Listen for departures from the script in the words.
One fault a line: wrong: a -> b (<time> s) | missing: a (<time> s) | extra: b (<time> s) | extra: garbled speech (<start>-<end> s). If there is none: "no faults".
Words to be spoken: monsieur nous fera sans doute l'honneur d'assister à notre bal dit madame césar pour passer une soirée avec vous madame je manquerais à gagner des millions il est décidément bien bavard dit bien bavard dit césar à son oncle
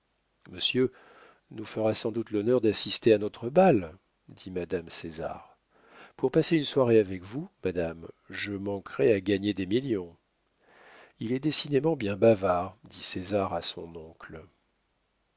missing: bien bavard dit (13.0 s)